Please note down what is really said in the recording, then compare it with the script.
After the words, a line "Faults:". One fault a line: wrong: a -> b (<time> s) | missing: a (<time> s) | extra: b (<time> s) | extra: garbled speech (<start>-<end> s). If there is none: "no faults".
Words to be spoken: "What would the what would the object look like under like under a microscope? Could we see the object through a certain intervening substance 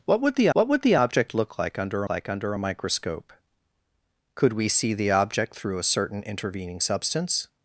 "What would the what would the object look like under like under a microscope? Could we see the object through a certain intervening substance
Faults:
no faults